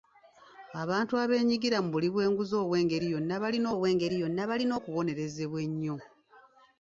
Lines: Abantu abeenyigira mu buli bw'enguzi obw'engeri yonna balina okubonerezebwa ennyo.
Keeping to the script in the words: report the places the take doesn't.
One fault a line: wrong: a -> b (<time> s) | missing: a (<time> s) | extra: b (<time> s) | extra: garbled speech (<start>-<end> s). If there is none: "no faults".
extra: obw'engeri yonna balina (3.7 s)